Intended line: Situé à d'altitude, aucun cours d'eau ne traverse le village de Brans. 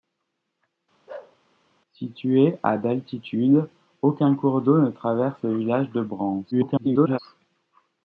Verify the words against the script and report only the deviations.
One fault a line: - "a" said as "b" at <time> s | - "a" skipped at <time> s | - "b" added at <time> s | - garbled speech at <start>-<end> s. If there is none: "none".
- garbled speech at 6.5-7.2 s